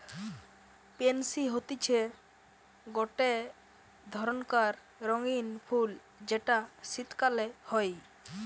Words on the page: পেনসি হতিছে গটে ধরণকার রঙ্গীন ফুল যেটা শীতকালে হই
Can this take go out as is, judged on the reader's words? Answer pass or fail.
pass